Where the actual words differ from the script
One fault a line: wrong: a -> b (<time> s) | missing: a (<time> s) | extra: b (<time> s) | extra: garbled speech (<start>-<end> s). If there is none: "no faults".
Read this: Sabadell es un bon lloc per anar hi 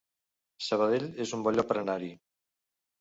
no faults